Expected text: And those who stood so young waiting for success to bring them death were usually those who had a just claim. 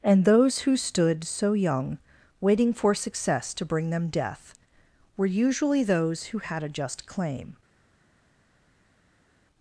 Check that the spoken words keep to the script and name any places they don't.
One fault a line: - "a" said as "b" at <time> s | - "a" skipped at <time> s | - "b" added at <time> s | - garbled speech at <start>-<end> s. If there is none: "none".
none